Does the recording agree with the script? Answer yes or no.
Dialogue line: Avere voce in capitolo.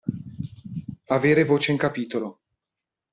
yes